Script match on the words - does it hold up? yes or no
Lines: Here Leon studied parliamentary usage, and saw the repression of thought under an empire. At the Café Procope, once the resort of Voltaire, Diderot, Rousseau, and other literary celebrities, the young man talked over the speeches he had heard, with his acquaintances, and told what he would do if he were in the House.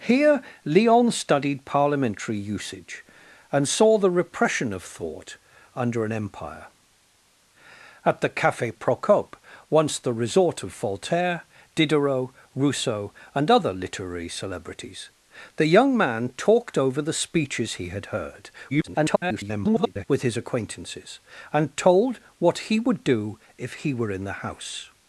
no